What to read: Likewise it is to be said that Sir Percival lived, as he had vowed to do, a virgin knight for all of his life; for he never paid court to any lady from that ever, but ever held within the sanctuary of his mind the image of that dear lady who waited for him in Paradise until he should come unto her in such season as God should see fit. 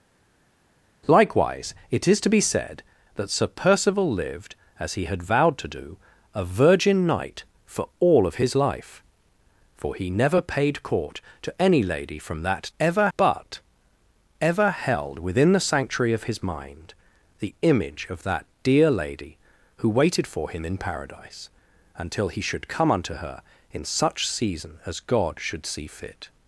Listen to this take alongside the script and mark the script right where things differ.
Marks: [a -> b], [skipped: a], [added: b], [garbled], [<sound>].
Likewise it is to be said that Sir Percival lived, as he had vowed to do, a virgin knight for all of his life; for he never paid court to any lady from that ever, but ever held within the sanctuary of his mind the image of that dear lady who waited for him in Paradise until he should come unto her in such season as God should see fit.